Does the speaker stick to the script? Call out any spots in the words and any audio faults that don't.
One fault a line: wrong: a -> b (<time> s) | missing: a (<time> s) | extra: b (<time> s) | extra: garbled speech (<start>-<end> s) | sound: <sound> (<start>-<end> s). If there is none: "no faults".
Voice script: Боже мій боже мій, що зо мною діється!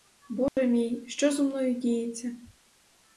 sound: dropout (0.5-0.6 s)
missing: боже мій (1.0 s)